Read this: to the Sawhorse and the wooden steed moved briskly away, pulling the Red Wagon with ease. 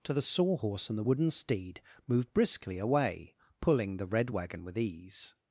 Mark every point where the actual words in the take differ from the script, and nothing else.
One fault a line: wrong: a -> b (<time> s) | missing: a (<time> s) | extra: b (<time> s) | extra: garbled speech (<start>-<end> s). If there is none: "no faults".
no faults